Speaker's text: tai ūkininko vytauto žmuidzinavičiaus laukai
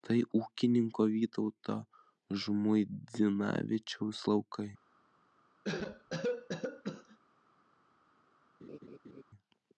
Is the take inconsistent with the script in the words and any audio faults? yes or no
yes